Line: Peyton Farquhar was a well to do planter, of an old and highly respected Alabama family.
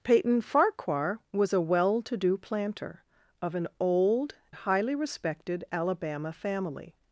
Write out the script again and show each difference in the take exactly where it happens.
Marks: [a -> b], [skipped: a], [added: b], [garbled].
Peyton Farquhar was a well to do planter, of an old [skipped: and] highly respected Alabama family.